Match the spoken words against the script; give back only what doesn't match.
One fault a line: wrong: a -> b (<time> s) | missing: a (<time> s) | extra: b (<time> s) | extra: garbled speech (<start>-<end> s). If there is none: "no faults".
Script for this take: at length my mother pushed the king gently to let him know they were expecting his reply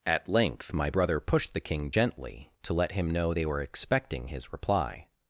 wrong: mother -> brother (0.9 s)